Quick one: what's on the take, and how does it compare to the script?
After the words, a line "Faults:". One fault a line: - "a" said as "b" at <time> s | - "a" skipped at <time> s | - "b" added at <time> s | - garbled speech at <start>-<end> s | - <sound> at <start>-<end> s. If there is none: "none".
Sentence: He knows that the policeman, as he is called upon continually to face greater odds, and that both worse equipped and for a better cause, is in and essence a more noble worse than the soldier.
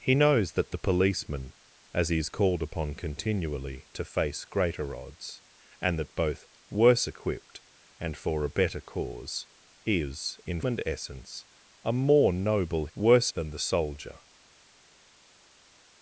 He knows that the policeman, as he is called upon continually to face greater odds, and that both worse equipped and for a better cause, is in and essence a more noble worse than the soldier.
Faults:
none